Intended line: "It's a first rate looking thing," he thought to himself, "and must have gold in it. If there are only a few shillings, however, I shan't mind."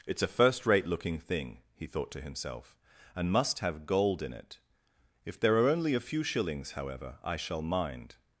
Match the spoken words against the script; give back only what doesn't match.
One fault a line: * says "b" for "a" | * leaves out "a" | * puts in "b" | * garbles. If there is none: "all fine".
* says "shall" for "shan't"